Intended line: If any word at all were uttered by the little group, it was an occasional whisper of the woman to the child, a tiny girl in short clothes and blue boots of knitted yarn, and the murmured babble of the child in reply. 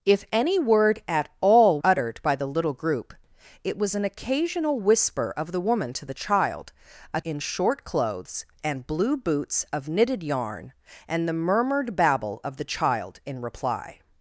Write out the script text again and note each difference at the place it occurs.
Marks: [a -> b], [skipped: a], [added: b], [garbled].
If any word at all [skipped: were] uttered by the little group, it was an occasional whisper of the woman to the child, a [skipped: tiny girl] in short clothes and blue boots of knitted yarn, and the murmured babble of the child in reply.